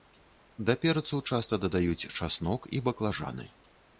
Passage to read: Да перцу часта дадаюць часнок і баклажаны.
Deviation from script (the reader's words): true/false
false